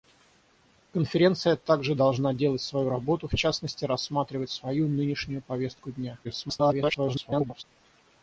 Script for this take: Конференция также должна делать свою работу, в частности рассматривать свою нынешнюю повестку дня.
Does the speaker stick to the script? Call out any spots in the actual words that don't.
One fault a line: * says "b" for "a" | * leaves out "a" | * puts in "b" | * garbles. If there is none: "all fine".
* garbles